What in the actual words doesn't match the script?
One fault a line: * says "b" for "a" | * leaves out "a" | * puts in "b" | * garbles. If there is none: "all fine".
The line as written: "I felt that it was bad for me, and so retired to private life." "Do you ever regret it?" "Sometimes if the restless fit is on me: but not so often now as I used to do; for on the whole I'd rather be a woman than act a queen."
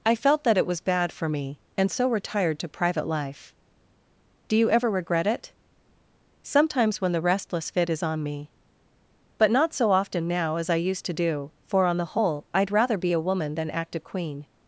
* says "when" for "if"